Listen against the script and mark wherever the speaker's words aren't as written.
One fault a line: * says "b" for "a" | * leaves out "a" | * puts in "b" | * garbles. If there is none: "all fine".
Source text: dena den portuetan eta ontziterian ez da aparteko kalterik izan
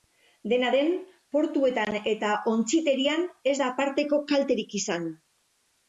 all fine